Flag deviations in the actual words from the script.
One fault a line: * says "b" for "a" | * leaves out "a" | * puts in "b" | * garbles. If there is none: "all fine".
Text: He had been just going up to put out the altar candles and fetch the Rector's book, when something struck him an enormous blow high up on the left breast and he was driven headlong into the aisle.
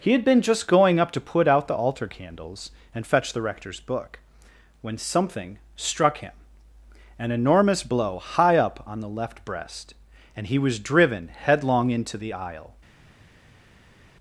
all fine